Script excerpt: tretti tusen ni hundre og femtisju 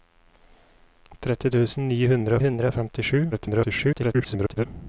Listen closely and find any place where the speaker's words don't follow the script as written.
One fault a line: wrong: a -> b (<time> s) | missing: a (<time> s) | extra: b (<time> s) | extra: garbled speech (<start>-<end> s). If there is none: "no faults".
extra: hundre (2.5 s)
extra: garbled speech (3.3-4.7 s)